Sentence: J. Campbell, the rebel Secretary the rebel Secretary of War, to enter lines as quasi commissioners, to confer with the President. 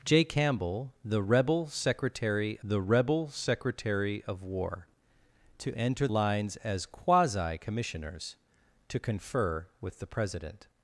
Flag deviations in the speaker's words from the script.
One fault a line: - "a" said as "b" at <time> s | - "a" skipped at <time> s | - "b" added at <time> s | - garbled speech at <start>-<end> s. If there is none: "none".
none